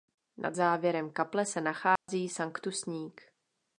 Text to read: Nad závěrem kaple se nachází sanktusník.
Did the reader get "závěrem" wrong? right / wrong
right